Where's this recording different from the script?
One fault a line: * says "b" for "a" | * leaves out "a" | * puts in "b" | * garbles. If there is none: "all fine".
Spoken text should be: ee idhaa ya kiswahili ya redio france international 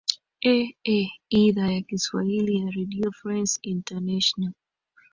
all fine